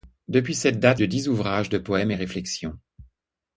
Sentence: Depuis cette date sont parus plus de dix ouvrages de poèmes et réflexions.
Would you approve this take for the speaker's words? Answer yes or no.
no